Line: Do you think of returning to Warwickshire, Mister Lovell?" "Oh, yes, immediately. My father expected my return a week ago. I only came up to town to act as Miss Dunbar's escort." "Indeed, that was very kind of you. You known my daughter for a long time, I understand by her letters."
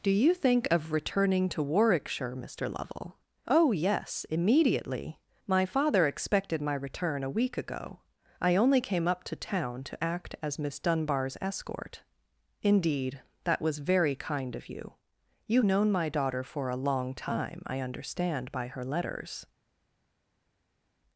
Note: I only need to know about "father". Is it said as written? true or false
true